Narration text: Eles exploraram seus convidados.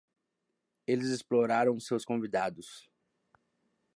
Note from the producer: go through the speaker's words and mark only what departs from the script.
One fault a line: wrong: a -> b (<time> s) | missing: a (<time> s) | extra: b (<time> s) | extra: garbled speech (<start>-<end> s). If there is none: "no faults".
no faults